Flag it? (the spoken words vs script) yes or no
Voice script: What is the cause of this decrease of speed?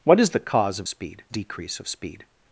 yes